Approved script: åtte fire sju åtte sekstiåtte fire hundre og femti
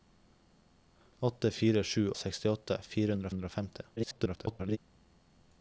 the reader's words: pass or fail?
fail